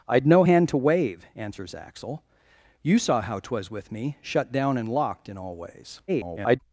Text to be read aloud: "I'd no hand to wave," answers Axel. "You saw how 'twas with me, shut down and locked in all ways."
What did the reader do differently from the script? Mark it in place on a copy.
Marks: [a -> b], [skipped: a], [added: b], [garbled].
"I'd no hand to wave," answers Axel. "You saw how 'twas with me, shut down and locked in all ways." [garbled]